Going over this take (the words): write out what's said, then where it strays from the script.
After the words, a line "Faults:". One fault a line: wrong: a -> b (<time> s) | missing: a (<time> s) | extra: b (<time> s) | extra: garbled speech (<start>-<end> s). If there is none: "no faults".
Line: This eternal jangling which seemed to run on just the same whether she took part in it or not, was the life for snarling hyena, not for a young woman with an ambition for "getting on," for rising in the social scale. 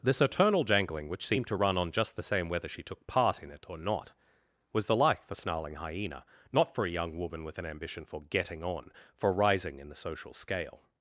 This eternal jangling which seemed to run on just the same whether she took part in it or not, was the life for snarling hyena, not for a young woman with an ambition for "getting on," for rising in the social scale.
Faults:
no faults